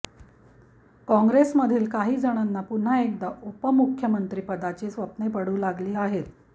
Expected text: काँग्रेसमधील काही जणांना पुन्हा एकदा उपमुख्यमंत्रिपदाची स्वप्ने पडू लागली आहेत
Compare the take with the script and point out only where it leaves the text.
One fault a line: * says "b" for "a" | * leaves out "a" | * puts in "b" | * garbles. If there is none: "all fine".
all fine